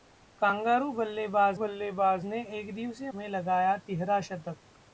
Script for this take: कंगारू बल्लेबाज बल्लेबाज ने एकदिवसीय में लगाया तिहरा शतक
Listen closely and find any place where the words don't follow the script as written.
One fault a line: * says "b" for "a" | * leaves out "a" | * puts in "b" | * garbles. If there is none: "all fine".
all fine